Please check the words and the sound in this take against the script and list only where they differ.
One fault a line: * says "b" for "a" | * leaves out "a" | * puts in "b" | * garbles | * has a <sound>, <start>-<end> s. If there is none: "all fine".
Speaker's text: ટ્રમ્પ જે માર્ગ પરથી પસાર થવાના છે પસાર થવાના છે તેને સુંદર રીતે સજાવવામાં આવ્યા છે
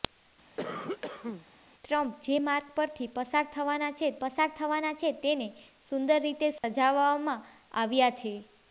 * has a cough, 0.6-1.5 s
* has a dropout, 6.6-6.6 s